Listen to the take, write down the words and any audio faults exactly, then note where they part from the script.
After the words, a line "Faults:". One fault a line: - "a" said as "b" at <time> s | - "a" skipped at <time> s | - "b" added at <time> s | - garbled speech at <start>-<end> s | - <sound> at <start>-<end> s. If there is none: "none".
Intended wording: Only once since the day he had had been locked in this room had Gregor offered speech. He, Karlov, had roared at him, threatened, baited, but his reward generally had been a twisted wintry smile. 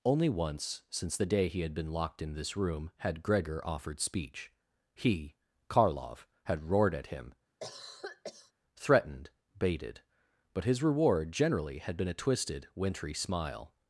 Only once since the day he had been locked in this room had Gregor offered speech. He, Karlov, had roared at him, threatened, baited, but his reward generally had been a twisted wintry smile.
Faults:
- "had" skipped at 1.7 s
- cough at 7.6-8.5 s